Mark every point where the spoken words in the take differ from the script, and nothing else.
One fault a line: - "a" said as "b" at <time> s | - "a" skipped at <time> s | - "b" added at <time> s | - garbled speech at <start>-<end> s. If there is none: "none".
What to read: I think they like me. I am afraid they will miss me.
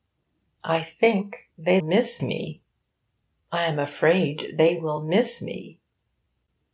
- "like" said as "miss" at 1.8 s